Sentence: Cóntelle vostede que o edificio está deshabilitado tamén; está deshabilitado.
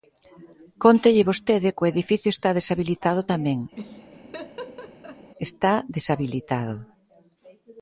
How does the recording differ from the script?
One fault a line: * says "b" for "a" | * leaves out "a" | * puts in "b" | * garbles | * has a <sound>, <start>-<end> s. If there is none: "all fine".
* has a laugh, 3.7-5.3 s